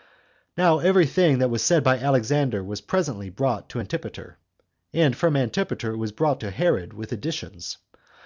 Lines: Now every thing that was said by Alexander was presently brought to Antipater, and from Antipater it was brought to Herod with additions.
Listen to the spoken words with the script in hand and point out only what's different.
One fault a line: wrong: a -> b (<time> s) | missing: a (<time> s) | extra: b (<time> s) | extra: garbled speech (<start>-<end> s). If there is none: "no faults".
no faults